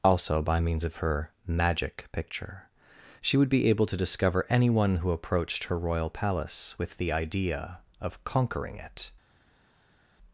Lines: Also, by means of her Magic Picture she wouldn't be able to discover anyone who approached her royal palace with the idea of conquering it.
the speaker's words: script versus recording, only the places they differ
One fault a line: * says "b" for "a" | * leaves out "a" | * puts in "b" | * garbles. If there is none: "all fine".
* says "would" for "wouldn't"